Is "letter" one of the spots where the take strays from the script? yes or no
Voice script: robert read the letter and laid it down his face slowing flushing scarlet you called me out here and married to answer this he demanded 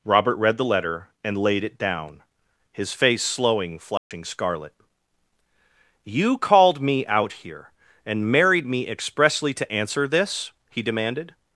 no